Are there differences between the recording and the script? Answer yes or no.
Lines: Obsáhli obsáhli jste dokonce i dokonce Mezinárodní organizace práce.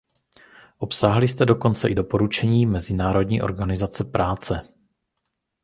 yes